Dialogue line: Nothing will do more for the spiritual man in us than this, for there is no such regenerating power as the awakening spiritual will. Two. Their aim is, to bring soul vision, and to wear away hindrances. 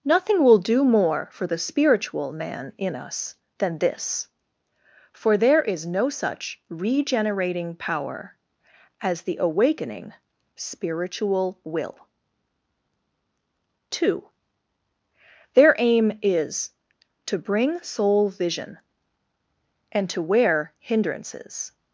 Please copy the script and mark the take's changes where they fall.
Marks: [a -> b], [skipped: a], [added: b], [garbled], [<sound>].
Nothing will do more for the spiritual man in us than this, for there is no such regenerating power as the awakening spiritual will. Two. Their aim is, to bring soul vision, and to wear [skipped: away] hindrances.